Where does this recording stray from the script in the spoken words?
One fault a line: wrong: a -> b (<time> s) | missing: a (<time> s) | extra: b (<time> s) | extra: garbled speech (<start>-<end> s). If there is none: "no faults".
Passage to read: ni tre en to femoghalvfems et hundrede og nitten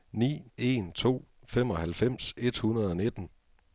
missing: tre (0.4 s)